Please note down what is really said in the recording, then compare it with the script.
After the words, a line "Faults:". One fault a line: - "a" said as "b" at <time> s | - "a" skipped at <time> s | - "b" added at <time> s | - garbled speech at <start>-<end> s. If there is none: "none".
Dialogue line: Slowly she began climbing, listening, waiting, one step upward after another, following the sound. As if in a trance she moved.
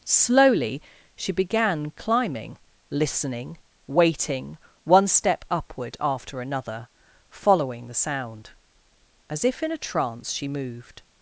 Slowly she began climbing, listening, waiting, one step upward after another, following the sound. As if in a trance she moved.
Faults:
none